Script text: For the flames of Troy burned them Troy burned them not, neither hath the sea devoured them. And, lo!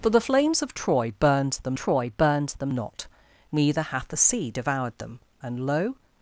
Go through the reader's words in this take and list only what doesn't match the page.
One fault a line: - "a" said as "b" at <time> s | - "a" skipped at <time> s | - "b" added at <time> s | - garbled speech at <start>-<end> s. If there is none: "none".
none